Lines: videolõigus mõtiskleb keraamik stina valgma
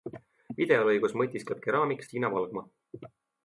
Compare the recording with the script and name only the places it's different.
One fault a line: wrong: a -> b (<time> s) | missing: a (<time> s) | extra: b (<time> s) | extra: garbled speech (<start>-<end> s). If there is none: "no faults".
no faults